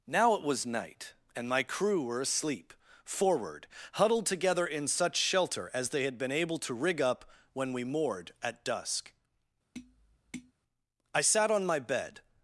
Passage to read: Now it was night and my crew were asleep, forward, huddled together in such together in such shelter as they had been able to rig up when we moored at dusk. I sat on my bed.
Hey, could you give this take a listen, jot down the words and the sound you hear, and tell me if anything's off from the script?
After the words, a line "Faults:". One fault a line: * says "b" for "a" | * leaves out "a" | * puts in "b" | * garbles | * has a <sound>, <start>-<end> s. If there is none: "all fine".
Now it was night and my crew were asleep, forward, huddled together in such shelter as they had been able to rig up when we moored at dusk. I sat on my bed.
Faults:
* leaves out "together in such"
* has a tap, 9.7-10.5 s